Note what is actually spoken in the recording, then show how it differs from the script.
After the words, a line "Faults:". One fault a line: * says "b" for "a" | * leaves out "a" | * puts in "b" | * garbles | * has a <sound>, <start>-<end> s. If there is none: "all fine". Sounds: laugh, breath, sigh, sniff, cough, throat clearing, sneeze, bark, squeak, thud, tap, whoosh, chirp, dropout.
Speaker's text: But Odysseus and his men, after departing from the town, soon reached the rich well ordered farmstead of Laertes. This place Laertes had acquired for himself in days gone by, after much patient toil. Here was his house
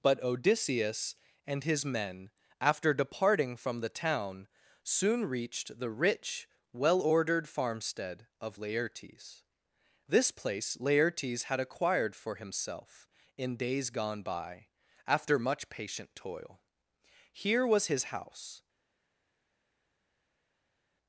But Odysseus and his men, after departing from the town, soon reached the rich well ordered farmstead of Laertes. This place Laertes had acquired for himself in days gone by, after much patient toil. Here was his house
Faults:
all fine